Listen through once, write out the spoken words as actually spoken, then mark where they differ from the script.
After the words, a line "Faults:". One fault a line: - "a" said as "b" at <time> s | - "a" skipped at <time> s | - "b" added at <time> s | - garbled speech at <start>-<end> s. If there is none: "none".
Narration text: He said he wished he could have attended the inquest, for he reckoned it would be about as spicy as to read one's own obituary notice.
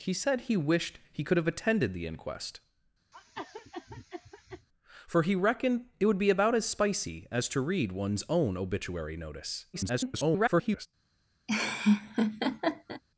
He said he wished he could have attended the inquest, for he reckoned it would be about as spicy as to read one's own obituary notice. [garbled]
Faults:
- garbled speech at 9.7-10.9 s